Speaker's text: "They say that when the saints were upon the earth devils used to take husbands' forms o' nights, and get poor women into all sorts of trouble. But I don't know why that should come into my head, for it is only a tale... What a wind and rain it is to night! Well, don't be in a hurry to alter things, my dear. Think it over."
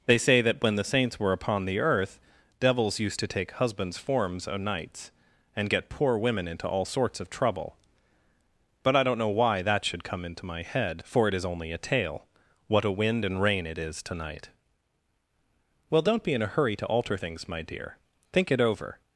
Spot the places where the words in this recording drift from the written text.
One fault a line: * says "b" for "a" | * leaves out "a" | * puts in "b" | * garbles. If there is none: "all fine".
all fine